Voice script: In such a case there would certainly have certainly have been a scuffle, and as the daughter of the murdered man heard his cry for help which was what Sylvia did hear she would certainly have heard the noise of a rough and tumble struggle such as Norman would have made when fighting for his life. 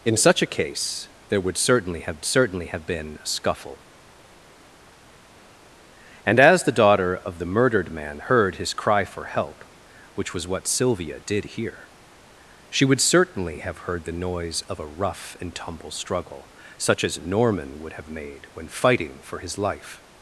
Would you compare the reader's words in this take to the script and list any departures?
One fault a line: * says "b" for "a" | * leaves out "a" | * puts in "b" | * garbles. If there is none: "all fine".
all fine